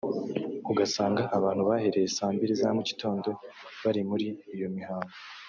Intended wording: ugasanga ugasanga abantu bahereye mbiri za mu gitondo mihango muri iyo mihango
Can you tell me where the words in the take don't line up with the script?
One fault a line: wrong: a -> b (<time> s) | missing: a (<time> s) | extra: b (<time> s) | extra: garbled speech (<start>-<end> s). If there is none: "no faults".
missing: ugasanga (1.2 s)
extra: saa (2.1 s)
wrong: mihango -> bari (3.8 s)